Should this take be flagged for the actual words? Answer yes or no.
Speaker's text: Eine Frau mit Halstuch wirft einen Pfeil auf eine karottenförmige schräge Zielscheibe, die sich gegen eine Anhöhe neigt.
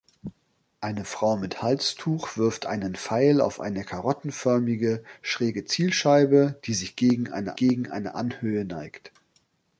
yes